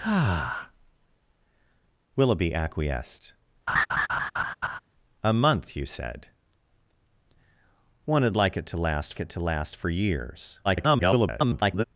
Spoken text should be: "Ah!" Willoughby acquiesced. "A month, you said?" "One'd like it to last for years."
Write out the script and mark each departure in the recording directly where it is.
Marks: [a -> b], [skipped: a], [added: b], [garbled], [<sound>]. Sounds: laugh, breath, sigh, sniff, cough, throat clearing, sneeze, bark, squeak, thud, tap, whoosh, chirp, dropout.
"Ah!" Willoughby acquiesced. [laugh] "A month, you said?" "One'd like it to last [added: it to last] for years." [garbled]